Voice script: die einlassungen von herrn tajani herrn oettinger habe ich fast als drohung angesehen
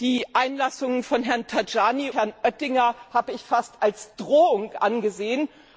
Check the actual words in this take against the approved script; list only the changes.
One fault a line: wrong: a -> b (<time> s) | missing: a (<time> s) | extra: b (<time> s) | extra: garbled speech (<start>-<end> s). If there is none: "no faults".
no faults